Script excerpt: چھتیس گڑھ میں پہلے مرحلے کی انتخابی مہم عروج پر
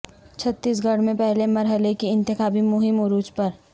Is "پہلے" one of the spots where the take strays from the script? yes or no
no